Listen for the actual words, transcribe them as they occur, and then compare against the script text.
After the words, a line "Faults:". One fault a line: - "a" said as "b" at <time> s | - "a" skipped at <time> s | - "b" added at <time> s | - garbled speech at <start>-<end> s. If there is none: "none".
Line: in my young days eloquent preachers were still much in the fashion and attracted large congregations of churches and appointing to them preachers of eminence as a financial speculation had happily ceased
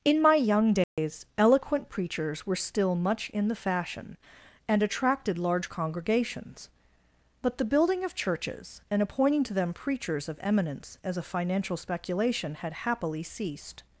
in my young days eloquent preachers were still much in the fashion and attracted large congregations but the building of churches and appointing to them preachers of eminence as a financial speculation had happily ceased
Faults:
- "but the building" added at 7.4 s